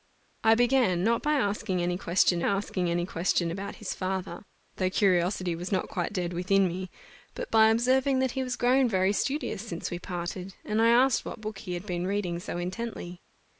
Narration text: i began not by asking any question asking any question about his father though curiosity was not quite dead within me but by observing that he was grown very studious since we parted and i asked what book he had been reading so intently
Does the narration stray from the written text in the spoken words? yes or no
no